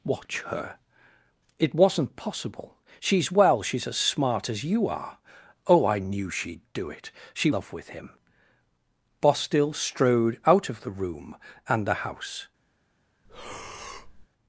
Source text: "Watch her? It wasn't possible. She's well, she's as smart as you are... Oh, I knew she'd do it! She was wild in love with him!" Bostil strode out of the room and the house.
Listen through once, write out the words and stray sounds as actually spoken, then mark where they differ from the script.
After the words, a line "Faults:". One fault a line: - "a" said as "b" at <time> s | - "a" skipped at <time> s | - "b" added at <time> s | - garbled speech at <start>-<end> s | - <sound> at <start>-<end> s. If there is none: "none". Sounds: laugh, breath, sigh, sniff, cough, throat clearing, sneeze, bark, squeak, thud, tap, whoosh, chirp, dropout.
"Watch her? It wasn't possible. She's well, she's as smart as you are... Oh, I knew she'd do it! She love with him!" Bostil strode out of the room and the house.
Faults:
- "was wild in" skipped at 7.5 s
- breath at 13.2-14.3 s